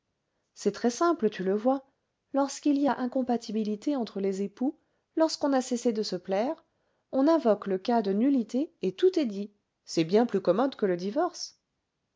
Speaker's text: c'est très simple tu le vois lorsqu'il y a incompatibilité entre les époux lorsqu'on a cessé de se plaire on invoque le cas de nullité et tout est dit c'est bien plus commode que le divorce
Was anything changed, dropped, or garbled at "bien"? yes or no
no